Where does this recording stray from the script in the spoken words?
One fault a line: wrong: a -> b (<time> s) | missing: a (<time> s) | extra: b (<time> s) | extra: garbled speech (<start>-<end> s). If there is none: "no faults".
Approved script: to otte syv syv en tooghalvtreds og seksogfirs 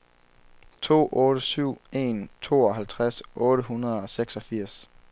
missing: syv (1.8 s)
extra: otte hundrede (3.3 s)